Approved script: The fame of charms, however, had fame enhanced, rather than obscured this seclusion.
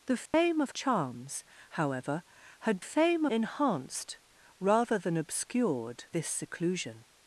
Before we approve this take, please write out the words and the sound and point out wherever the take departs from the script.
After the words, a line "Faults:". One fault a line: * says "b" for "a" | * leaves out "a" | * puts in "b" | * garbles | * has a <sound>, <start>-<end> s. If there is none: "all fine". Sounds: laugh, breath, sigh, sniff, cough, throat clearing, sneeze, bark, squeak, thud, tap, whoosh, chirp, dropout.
The fame of charms, however, had fame enhanced, rather than obscured this seclusion.
Faults:
* has a dropout, 0.3-0.3 s